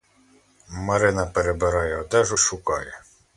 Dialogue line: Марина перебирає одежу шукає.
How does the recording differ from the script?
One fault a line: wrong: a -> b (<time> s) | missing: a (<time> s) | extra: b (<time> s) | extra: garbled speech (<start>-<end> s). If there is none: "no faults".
no faults